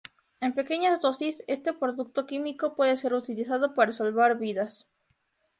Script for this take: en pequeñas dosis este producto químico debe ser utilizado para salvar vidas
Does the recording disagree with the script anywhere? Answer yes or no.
yes